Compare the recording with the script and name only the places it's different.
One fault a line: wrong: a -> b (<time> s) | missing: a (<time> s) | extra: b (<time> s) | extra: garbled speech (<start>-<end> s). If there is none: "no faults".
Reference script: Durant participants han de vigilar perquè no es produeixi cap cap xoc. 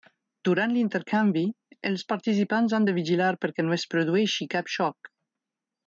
extra: l'intercanvi els (0.8 s)
missing: cap (4.7 s)